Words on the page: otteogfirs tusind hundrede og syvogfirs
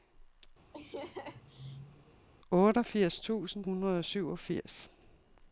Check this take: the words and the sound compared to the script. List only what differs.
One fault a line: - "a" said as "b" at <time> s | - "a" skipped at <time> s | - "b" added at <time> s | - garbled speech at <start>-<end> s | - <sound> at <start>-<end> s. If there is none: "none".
- laugh at 0.7-2.3 s